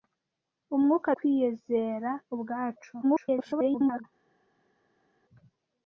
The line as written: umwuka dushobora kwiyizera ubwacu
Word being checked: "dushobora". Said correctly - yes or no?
no